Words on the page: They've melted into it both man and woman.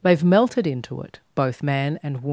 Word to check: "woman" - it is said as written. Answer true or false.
true